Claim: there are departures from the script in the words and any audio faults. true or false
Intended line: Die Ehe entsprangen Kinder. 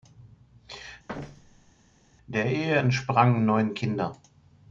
true